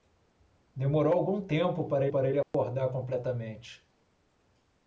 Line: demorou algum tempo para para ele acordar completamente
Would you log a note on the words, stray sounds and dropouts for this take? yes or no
yes